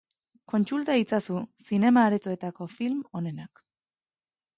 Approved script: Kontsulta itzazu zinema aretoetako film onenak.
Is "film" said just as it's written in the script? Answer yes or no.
yes